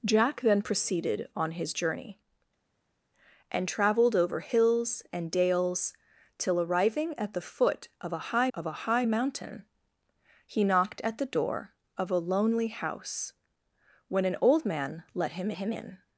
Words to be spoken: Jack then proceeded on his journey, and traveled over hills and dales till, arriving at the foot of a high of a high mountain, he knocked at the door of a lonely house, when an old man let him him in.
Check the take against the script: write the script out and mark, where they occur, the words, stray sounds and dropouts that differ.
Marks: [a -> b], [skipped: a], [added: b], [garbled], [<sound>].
Jack then proceeded on his journey, and traveled over hills and dales till, arriving at the foot of a high of a high mountain, he knocked at the door of a lonely house, when an old man let him him in.